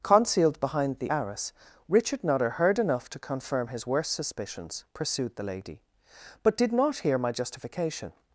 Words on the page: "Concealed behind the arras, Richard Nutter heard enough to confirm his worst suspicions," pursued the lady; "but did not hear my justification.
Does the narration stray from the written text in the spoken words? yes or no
no